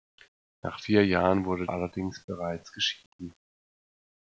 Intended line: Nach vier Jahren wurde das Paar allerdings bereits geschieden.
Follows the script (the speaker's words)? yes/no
no